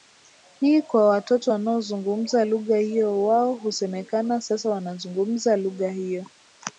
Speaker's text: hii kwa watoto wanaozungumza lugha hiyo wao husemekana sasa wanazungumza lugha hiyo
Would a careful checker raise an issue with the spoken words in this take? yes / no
no